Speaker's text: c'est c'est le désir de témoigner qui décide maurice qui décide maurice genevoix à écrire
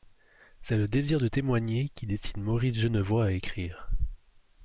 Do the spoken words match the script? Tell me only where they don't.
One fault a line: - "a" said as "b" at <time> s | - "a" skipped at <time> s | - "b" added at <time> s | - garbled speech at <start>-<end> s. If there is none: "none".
- "c'est" skipped at 0.8 s
- "qui décide maurice" skipped at 2.8 s